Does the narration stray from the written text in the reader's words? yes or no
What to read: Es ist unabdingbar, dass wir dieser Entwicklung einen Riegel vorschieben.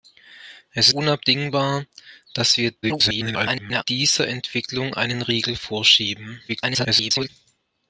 yes